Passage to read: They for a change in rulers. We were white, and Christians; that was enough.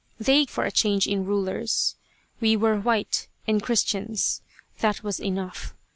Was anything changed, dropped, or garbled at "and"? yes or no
no